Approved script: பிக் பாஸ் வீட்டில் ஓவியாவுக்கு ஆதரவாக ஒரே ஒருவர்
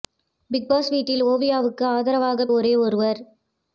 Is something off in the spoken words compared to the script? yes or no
no